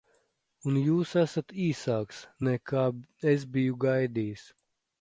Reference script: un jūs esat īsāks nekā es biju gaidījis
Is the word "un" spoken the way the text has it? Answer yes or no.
yes